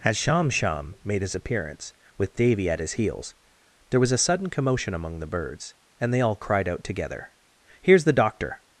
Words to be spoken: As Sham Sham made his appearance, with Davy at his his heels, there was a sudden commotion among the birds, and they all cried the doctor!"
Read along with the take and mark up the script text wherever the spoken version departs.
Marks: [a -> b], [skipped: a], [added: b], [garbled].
As Sham Sham made his appearance, with Davy at his [skipped: his] heels, there was a sudden commotion among the birds, and they all cried [added: out together Here's] the doctor!"